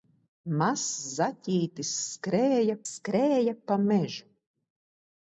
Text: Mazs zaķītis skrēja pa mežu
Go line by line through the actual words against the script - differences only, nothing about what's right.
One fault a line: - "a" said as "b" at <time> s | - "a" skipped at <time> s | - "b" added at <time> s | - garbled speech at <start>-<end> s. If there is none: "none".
- "skrēja" added at 2.9 s